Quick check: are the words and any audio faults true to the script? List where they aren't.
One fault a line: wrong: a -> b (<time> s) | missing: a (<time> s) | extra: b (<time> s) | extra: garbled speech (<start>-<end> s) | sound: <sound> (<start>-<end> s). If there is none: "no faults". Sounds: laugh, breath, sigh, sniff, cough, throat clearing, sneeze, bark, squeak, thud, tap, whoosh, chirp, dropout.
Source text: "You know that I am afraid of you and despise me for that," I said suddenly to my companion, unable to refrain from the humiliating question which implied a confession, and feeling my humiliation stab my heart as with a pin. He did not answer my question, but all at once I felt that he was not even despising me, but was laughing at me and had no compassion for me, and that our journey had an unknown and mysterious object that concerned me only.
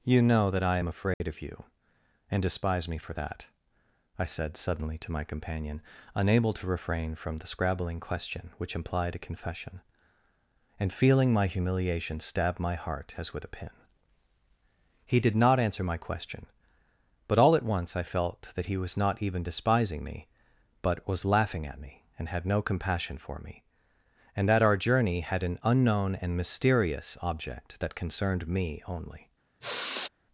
sound: dropout (1.1-1.2 s)
wrong: humiliating -> scrabbling (7.5 s)
sound: sigh (29.6-30.1 s)